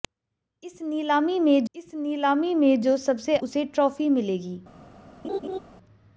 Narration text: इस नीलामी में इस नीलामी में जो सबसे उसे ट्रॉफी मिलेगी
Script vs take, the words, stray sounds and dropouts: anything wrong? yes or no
yes